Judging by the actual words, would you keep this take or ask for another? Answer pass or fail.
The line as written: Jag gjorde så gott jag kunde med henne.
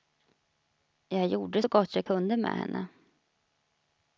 pass